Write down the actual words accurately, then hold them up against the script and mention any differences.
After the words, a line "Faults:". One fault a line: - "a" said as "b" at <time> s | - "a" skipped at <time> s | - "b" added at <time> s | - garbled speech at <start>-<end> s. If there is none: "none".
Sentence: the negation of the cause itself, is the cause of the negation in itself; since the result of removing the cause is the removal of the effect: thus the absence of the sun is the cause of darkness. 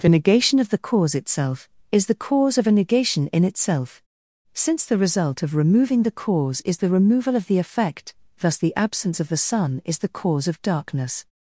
the negation of the cause itself, is the cause of a negation in itself; since the result of removing the cause is the removal of the effect: thus the absence of the sun is the cause of darkness.
Faults:
- "the" said as "a" at 2.7 s